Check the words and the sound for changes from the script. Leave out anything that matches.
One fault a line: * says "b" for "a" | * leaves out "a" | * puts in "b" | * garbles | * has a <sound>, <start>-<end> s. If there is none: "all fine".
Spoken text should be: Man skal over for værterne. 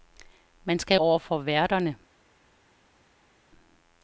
all fine